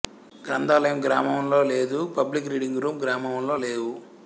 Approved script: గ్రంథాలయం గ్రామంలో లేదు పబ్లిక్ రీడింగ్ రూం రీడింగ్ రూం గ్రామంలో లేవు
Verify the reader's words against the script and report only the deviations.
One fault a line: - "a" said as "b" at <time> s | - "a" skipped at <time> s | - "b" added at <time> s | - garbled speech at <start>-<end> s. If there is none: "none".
- "రీడింగ్ రూం" skipped at 3.0 s